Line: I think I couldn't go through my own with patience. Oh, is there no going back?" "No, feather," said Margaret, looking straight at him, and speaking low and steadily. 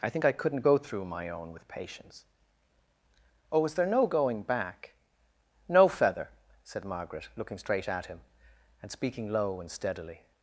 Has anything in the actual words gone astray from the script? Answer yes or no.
no